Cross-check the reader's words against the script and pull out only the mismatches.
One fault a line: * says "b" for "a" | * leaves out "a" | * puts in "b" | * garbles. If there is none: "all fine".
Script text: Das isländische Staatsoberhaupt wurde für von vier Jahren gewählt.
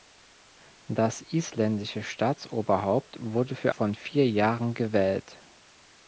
all fine